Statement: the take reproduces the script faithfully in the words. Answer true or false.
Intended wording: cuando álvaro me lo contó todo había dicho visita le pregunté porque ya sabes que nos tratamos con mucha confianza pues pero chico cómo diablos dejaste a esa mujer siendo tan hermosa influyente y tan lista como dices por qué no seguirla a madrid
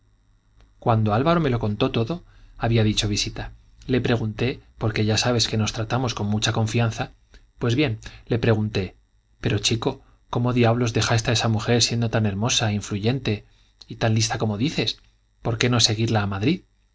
false